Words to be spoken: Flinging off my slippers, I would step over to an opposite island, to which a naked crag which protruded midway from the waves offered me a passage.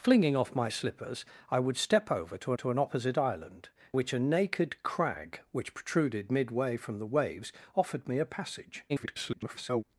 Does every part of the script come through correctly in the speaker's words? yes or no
no